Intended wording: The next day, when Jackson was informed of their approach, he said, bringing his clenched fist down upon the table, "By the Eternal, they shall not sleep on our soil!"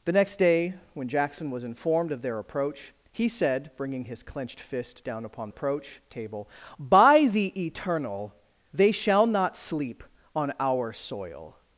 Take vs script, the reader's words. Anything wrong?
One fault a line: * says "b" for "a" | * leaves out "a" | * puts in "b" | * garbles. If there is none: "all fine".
* says "approach" for "the"